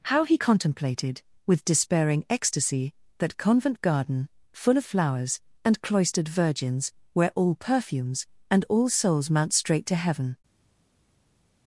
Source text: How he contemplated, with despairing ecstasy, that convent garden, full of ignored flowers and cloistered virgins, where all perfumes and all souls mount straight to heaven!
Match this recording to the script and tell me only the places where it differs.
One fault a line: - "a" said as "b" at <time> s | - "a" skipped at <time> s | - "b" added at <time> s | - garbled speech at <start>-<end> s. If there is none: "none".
- "ignored" skipped at 4.9 s